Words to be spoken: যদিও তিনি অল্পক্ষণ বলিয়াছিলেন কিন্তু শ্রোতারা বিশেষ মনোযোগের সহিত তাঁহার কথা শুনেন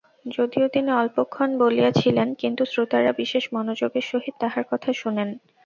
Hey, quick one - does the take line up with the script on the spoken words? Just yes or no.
yes